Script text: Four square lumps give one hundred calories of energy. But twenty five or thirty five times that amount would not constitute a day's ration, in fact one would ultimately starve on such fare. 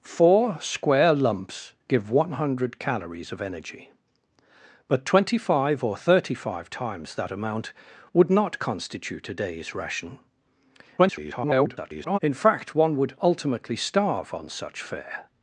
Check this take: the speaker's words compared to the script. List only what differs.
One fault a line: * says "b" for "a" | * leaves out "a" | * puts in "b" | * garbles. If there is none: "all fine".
* garbles